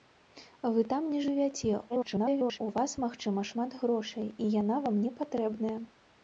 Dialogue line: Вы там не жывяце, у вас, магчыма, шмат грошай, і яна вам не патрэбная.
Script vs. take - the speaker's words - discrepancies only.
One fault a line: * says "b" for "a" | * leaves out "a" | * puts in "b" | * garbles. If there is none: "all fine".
* garbles